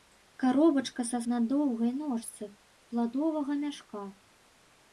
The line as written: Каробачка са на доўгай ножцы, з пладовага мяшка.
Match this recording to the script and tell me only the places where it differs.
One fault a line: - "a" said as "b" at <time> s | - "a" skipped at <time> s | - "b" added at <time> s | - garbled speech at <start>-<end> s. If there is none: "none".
none